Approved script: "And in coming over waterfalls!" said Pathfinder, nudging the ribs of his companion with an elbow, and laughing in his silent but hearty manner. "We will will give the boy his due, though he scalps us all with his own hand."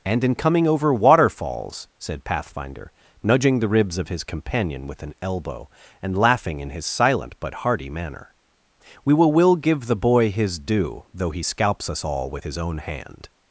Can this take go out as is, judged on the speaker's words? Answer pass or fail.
pass